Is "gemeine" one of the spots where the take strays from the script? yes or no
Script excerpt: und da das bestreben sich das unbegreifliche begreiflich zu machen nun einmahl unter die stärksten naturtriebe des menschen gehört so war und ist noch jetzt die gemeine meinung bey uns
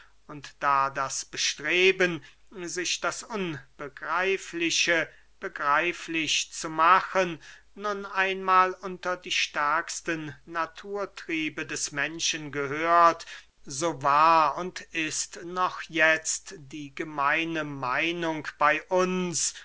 no